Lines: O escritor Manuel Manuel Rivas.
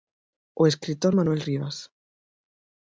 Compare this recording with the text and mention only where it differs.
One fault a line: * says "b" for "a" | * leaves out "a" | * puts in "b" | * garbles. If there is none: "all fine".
* leaves out "Manuel"